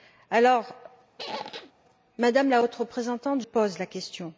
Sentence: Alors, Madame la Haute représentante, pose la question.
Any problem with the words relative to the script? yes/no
no